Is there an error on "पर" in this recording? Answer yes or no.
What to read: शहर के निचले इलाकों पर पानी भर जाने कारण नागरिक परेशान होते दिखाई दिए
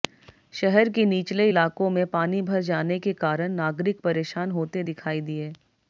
yes